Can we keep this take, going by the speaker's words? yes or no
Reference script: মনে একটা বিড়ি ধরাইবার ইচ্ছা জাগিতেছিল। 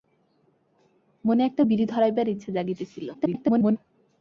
no